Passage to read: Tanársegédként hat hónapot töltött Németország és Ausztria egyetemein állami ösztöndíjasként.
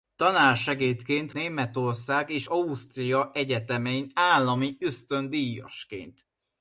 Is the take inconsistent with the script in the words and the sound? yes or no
yes